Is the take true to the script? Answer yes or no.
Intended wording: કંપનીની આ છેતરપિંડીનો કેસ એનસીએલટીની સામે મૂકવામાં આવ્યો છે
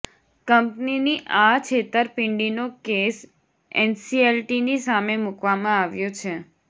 yes